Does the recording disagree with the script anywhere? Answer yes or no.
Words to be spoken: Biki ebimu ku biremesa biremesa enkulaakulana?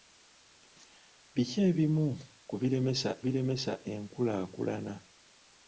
no